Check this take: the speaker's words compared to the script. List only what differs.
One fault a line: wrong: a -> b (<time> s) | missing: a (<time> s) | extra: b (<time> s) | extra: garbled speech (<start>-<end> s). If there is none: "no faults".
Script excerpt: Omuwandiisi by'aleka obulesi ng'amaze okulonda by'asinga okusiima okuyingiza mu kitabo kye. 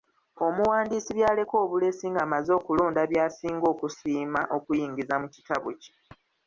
no faults